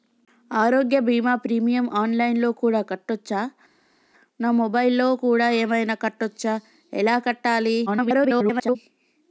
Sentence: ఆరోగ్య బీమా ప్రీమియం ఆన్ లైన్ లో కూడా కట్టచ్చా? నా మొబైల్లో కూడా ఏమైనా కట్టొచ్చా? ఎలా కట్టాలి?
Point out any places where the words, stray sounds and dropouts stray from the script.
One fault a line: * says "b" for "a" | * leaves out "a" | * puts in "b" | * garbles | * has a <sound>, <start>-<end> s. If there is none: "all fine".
* garbles